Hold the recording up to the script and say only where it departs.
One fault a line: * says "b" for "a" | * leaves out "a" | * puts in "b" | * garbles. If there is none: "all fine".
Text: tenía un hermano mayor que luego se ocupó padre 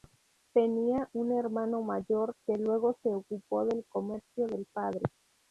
* puts in "del comercio del"